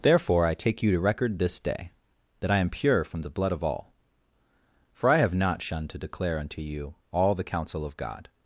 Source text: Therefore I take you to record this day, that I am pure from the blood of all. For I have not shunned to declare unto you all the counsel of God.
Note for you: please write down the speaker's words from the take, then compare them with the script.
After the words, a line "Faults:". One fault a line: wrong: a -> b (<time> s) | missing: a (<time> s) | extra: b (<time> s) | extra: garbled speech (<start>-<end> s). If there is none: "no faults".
Therefore I take you to record this day, that I am pure from the blood of all. For I have not shunned to declare unto you all the counsel of God.
Faults:
no faults